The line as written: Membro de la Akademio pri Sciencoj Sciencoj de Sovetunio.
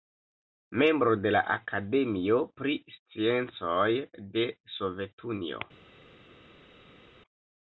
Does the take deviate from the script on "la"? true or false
false